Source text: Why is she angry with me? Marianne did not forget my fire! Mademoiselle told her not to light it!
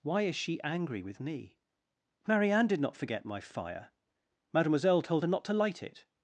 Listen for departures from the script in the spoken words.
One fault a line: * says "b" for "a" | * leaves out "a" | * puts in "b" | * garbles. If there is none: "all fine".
all fine